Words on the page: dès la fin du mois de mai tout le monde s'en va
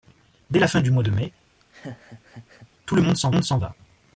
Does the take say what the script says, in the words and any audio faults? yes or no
no